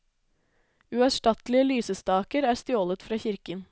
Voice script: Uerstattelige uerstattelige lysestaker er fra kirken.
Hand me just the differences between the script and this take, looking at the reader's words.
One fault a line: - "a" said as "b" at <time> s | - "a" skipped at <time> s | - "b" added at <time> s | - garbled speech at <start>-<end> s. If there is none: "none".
- "uerstattelige" skipped at 1.7 s
- "stjålet" added at 2.6 s